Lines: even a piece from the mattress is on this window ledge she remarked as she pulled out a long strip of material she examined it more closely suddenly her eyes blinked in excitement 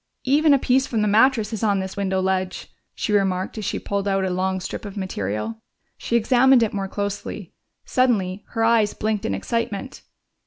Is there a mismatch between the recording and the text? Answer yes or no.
no